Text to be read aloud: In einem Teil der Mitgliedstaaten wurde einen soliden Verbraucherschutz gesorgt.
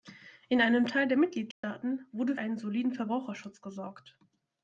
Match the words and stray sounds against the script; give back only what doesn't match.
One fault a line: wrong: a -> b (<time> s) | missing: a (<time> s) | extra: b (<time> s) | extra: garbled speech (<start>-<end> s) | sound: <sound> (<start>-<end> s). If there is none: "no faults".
sound: dropout (1.5-1.6 s)